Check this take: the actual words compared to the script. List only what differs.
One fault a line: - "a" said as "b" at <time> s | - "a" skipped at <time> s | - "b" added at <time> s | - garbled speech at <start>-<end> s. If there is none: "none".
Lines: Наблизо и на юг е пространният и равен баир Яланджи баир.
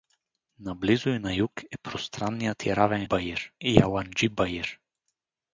none